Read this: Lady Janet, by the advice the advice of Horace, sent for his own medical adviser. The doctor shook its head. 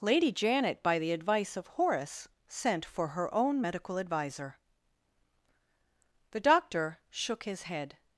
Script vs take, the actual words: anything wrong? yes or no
yes